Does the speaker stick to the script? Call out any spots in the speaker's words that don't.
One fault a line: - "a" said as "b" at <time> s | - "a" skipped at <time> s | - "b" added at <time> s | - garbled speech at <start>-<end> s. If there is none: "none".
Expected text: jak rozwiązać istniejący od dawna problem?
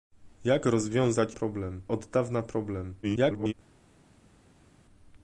- "istniejący" said as "problem" at 1.3 s
- garbled speech at 3.0-3.5 s